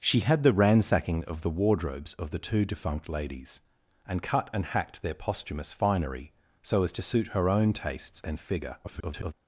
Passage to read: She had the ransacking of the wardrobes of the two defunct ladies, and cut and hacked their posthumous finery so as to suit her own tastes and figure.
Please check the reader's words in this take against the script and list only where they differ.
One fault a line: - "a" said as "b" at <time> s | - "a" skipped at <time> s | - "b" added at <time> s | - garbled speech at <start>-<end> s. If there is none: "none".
- garbled speech at 8.8-9.3 s